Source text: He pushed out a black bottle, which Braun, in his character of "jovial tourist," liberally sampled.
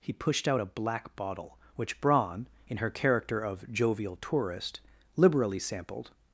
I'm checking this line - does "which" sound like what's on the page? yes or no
yes